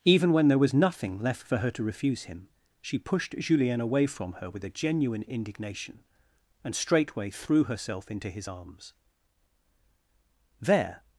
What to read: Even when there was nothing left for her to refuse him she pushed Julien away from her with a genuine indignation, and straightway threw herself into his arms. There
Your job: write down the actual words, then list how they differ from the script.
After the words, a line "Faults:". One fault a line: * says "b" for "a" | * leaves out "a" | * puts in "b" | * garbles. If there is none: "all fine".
Even when there was nothing left for her to refuse him she pushed Julien away from her with a genuine indignation, and straightway threw herself into his arms. There
Faults:
all fine